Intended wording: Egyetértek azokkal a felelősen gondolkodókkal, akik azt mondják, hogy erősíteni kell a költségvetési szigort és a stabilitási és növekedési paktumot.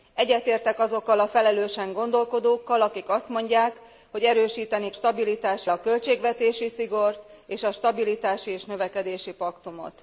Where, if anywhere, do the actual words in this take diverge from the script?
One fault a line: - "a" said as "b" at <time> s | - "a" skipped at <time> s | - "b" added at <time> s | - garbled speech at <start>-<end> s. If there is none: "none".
- "kell" said as "stabilitási" at 4.9 s